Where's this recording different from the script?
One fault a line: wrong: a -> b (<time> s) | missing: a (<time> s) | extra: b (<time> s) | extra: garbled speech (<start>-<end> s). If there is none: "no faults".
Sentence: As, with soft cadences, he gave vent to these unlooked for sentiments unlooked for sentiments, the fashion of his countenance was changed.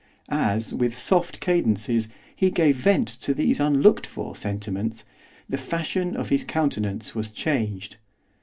missing: unlooked for sentiments (5.0 s)